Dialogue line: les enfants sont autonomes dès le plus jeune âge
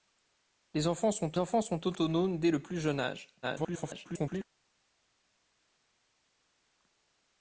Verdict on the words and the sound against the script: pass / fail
fail